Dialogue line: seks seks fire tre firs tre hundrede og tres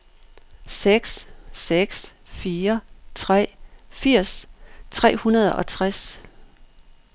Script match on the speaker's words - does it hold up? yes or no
yes